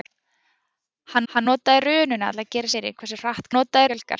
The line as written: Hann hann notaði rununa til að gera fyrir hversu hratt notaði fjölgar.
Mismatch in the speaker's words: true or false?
false